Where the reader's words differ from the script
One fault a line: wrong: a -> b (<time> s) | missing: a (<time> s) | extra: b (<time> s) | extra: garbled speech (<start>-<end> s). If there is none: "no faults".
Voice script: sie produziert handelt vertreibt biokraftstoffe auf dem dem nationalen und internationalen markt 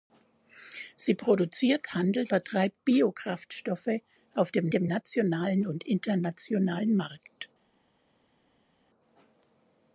no faults